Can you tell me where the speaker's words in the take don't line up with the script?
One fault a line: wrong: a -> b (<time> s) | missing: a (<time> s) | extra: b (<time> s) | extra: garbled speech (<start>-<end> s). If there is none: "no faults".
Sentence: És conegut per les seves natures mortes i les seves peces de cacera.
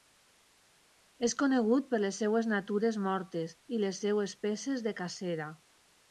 no faults